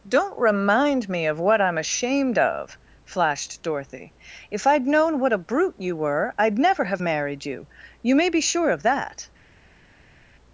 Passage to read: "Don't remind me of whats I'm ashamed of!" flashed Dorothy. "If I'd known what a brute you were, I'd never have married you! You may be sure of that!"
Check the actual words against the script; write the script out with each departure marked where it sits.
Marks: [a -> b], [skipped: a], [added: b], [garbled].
"Don't remind me of [whats -> what] I'm ashamed of!" flashed Dorothy. "If I'd known what a brute you were, I'd never have married you! You may be sure of that!"